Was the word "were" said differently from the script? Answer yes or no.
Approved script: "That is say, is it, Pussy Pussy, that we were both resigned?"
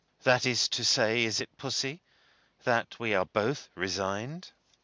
yes